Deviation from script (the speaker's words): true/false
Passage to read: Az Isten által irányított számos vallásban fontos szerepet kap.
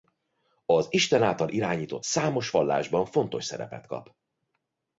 false